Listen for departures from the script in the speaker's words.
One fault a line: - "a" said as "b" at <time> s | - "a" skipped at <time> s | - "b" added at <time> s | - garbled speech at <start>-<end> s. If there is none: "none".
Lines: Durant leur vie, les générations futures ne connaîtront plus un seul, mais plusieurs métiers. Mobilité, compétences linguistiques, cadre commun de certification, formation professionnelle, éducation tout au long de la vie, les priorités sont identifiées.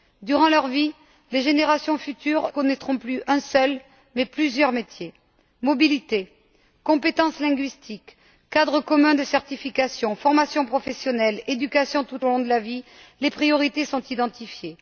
- "ne" skipped at 2.5 s